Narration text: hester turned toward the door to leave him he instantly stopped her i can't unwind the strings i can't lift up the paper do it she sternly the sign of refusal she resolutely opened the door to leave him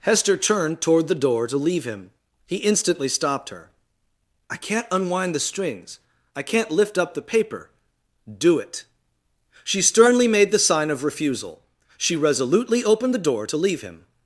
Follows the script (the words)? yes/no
no